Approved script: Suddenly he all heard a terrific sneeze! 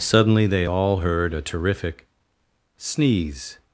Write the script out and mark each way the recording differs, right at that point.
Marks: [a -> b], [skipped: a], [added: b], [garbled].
Suddenly [he -> they] all heard a terrific sneeze!